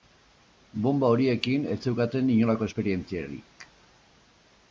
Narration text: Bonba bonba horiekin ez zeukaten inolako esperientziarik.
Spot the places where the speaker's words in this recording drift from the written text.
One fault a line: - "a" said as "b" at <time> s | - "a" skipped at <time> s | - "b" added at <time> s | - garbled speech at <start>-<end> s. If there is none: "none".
- "bonba" skipped at 1.1 s